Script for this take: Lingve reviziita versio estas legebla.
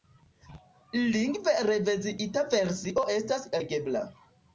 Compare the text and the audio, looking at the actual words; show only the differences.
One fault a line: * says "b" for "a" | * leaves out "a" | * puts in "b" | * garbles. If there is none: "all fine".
all fine